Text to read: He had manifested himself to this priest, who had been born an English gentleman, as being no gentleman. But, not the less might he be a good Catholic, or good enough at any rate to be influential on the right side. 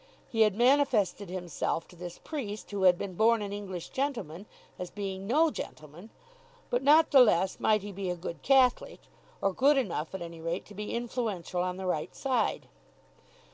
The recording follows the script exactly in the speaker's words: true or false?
true